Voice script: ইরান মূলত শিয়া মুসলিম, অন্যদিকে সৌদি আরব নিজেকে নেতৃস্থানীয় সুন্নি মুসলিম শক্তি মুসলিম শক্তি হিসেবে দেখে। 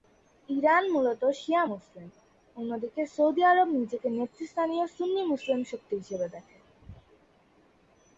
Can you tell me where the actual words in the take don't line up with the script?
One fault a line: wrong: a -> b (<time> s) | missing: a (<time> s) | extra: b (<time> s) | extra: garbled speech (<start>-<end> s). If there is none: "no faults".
missing: মুসলিম শক্তি (5.9 s)